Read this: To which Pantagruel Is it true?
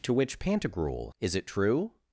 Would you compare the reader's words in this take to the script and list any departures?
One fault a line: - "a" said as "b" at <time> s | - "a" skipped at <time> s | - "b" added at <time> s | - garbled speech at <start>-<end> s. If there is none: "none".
none